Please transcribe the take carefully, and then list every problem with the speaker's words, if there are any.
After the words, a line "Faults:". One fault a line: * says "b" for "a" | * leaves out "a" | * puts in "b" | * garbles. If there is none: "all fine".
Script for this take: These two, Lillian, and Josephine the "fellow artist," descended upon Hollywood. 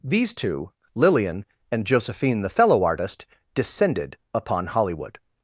These two, Lillian, and Josephine the "fellow artist," descended upon Hollywood.
Faults:
all fine